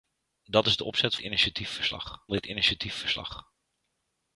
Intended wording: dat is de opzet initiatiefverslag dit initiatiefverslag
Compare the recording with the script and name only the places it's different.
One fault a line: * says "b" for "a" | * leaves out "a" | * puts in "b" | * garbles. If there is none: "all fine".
all fine